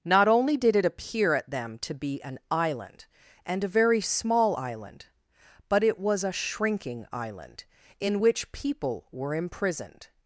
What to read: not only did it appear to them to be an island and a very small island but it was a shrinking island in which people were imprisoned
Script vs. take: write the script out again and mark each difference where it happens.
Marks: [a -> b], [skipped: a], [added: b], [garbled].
not only did it appear [to -> at] them to be an island and a very small island but it was a shrinking island in which people were imprisoned